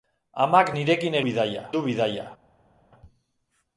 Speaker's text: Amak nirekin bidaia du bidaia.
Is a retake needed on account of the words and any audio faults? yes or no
no